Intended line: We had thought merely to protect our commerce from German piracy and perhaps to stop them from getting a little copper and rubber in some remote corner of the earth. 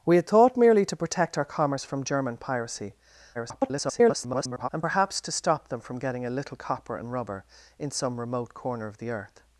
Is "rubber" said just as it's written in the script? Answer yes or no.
yes